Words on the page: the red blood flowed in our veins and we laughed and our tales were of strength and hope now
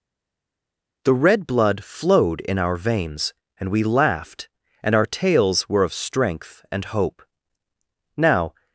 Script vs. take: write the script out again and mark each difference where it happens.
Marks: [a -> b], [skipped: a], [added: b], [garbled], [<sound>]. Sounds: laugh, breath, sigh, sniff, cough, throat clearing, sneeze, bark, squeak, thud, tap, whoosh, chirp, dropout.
the red blood flowed in our veins and we laughed and our tales were of strength and hope now